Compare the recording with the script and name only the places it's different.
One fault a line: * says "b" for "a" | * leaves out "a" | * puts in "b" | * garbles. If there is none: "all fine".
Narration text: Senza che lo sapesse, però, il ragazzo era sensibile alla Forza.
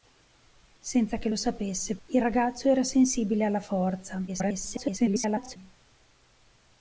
* leaves out "però"
* garbles